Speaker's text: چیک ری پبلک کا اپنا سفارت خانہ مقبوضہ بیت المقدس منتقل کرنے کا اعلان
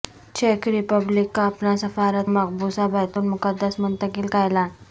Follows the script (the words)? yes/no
no